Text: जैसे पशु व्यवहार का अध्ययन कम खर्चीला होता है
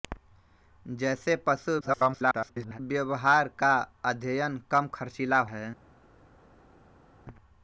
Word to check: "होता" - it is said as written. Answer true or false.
false